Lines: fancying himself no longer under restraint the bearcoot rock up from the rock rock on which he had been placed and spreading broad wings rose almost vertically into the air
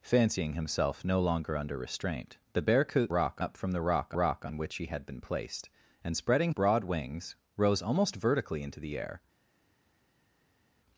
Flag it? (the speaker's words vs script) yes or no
no